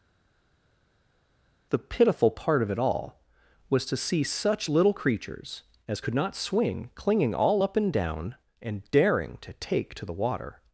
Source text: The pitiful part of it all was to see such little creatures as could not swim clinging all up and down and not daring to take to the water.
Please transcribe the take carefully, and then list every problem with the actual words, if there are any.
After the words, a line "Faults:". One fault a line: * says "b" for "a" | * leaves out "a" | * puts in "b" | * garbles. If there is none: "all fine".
The pitiful part of it all was to see such little creatures as could not swing clinging all up and down and daring to take to the water.
Faults:
* says "swing" for "swim"
* leaves out "not"